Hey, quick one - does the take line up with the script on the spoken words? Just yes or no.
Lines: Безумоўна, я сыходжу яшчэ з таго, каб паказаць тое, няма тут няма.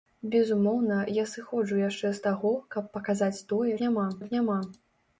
yes